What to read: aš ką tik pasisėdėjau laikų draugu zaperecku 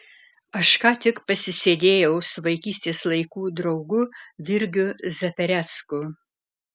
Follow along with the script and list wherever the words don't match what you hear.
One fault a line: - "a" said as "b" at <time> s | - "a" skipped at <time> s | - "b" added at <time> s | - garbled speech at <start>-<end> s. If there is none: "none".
- "su vaikystės" added at 2.3 s
- "virgiu" added at 4.5 s